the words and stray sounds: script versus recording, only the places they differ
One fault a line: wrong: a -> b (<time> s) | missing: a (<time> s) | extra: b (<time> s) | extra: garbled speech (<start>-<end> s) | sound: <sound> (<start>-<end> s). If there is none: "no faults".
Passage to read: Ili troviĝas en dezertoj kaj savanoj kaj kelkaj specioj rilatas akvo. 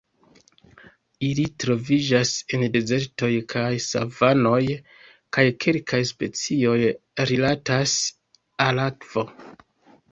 extra: al (8.7 s)